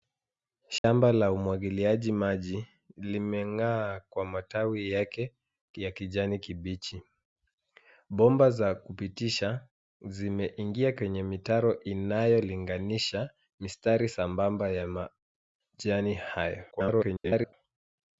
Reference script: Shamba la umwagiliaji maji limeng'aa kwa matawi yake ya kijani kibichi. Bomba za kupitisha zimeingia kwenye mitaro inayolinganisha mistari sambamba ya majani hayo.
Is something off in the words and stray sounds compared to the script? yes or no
yes